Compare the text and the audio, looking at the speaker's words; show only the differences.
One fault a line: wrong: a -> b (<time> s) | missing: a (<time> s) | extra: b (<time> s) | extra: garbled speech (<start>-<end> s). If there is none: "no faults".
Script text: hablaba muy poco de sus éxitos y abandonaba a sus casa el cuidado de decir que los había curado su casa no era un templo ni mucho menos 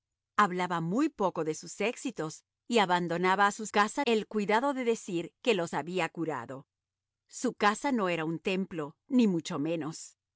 no faults